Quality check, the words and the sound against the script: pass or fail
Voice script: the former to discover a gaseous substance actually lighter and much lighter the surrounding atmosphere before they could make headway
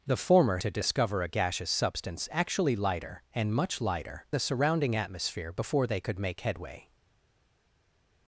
pass